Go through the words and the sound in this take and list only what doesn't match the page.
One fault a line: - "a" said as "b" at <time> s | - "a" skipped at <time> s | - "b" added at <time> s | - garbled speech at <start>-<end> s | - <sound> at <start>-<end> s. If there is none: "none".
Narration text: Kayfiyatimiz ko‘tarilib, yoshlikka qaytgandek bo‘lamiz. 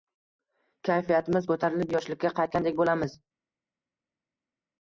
none